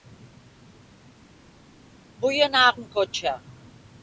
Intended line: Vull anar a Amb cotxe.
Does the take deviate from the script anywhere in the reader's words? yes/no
no